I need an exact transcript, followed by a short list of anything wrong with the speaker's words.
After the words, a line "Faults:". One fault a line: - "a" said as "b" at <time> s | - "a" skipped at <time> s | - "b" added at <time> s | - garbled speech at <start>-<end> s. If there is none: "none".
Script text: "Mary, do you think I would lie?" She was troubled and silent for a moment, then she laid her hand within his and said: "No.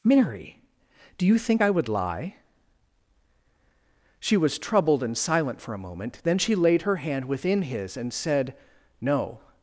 "Mary, do you think I would lie?" She was troubled and silent for a moment, then she laid her hand within his and said: "No.
Faults:
none